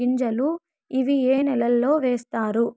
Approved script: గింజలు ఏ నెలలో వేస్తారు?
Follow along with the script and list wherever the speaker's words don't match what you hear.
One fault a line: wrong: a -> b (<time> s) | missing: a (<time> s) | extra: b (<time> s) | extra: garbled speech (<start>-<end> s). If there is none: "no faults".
extra: ఇవి (0.9 s)